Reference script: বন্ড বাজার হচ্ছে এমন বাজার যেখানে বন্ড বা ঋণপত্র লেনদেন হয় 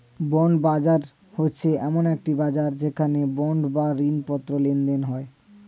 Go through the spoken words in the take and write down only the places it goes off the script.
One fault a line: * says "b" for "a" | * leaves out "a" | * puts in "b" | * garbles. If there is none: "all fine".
* puts in "একটি"